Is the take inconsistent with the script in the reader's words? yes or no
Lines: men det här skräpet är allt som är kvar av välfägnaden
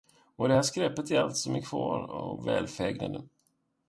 yes